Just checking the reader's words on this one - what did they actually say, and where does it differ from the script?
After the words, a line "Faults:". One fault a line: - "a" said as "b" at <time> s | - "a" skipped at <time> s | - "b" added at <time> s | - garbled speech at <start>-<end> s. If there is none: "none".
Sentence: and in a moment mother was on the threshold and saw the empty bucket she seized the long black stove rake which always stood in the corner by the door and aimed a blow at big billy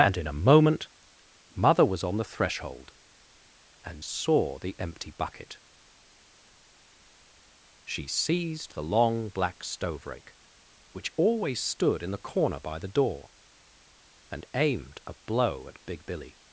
and in a moment mother was on the threshold and saw the empty bucket she seized the long black stove rake which always stood in the corner by the door and aimed a blow at big billy
Faults:
none